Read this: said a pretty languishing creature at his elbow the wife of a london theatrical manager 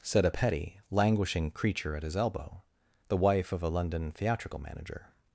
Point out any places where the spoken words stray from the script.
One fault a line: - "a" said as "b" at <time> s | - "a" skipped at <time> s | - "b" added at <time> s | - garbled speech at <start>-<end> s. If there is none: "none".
- "pretty" said as "petty" at 0.3 s